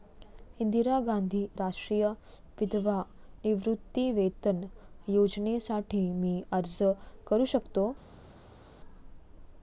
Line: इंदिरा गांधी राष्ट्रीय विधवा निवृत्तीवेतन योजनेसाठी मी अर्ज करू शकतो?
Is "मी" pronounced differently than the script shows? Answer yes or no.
no